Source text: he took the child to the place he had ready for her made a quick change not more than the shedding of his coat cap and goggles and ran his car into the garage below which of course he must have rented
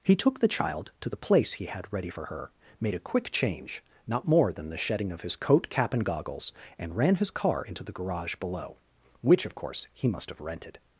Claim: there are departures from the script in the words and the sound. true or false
false